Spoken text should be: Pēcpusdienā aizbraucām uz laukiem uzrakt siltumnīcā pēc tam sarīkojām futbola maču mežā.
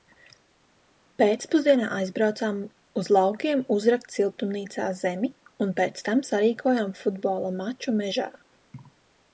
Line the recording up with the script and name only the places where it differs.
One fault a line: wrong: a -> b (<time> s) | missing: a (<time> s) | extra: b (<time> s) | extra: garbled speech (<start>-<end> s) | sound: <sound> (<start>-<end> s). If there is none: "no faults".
extra: zemi un (5.0 s)